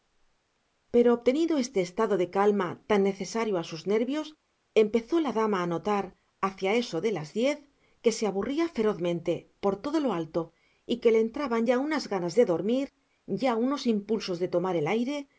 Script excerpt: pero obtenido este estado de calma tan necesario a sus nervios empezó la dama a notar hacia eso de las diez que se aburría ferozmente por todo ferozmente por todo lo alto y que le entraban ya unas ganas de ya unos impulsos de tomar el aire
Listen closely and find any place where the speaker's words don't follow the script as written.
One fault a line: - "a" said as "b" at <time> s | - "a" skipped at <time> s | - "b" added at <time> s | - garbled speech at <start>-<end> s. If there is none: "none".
- "ferozmente por todo" skipped at 10.0 s
- "dormir" added at 12.4 s